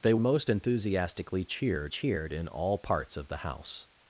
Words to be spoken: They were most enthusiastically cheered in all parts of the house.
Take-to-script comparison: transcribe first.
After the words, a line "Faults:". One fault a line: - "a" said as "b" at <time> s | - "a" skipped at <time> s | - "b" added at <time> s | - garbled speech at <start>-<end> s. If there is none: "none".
They most enthusiastically cheered cheered in all parts of the house.
Faults:
- "were" skipped at 0.1 s
- "cheered" added at 1.9 s